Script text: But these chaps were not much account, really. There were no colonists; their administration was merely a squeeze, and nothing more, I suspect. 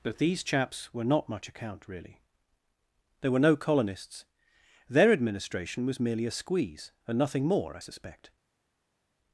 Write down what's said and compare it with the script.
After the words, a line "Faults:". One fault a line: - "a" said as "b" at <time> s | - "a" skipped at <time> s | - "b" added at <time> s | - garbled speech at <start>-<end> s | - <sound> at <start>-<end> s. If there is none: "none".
But these chaps were not much account, really. There were no colonists; their administration was merely a squeeze, and nothing more, I suspect.
Faults:
none